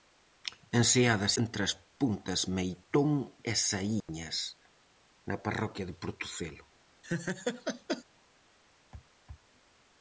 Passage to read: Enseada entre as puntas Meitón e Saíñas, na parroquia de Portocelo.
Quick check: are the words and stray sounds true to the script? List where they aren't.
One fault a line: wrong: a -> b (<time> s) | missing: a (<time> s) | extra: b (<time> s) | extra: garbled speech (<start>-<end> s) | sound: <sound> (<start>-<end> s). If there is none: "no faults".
sound: dropout (4.0-4.1 s)
sound: laugh (7.0-8.0 s)